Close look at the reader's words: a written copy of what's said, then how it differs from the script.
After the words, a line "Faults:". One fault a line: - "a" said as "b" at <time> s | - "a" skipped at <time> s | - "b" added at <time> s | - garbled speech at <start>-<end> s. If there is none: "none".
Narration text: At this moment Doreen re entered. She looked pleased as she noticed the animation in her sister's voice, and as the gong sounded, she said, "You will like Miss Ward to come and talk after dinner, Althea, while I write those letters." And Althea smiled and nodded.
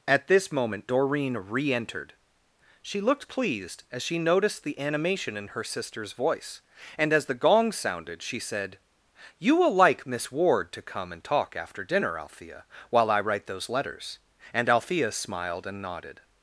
At this moment Doreen re entered. She looked pleased as she noticed the animation in her sister's voice, and as the gong sounded, she said, "You will like Miss Ward to come and talk after dinner, Althea, while I write those letters." And Althea smiled and nodded.
Faults:
none